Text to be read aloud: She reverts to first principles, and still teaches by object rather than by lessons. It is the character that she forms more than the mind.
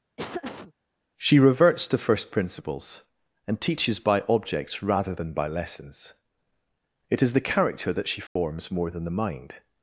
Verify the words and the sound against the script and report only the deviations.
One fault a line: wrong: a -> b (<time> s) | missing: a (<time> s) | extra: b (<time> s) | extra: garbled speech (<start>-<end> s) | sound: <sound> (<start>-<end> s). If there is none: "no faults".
sound: laugh (0.2-0.7 s)
missing: still (3.6 s)
wrong: object -> objects (4.3 s)
sound: dropout (8.3-8.4 s)